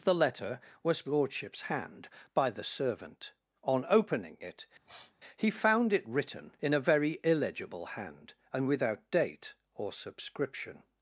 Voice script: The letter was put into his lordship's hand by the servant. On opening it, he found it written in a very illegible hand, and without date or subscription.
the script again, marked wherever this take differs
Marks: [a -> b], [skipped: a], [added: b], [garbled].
The letter was [skipped: put into his] lordship's hand by the servant. On opening it, he found it written in a very illegible hand, and without date or subscription.